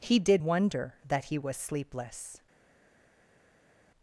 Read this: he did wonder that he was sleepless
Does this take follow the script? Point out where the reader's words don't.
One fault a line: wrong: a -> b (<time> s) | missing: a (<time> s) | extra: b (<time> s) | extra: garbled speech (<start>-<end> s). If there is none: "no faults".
no faults